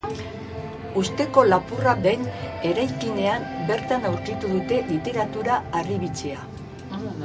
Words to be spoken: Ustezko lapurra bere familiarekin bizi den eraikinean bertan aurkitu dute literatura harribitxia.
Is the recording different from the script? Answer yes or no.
yes